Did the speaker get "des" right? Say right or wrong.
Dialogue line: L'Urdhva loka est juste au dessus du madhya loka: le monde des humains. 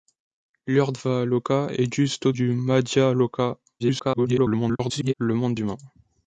wrong